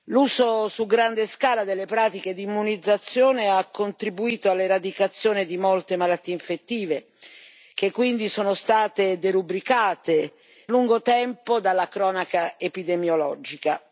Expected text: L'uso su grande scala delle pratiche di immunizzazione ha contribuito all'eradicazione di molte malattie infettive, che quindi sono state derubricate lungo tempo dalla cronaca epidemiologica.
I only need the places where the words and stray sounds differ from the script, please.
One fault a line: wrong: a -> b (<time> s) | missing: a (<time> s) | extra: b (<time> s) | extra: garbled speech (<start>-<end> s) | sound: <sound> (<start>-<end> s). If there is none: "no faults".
no faults